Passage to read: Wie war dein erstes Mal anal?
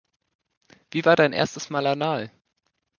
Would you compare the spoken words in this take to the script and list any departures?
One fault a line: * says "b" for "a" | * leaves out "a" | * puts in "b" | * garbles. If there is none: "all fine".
all fine